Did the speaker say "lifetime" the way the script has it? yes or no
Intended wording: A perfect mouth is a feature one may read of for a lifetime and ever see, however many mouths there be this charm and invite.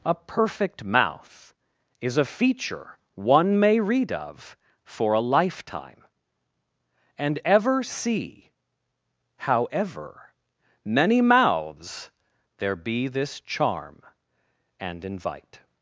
yes